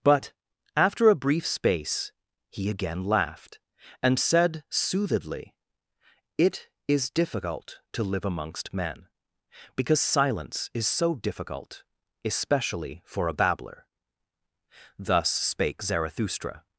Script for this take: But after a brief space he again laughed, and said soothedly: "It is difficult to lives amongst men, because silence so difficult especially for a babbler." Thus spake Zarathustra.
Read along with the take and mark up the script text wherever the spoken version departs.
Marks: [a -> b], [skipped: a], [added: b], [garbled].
But after a brief space he again laughed, and said soothedly: "It is difficult to [lives -> live] amongst men, because silence [added: is] so difficult especially for a babbler." Thus spake Zarathustra.